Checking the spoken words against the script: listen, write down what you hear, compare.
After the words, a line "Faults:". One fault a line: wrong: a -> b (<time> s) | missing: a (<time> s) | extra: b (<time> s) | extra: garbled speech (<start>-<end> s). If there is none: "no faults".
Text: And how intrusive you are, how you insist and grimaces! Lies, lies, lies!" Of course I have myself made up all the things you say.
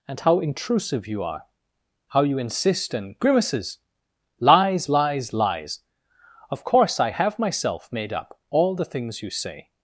And how intrusive you are, how you insist and grimaces! Lies, lies, lies!" Of course I have myself made up all the things you say.
Faults:
no faults